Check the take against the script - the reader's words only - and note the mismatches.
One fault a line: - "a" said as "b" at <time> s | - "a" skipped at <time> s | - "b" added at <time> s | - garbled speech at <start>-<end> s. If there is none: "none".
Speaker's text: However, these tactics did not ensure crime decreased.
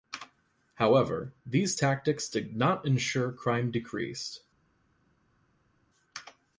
none